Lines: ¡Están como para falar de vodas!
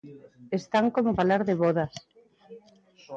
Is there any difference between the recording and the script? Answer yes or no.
yes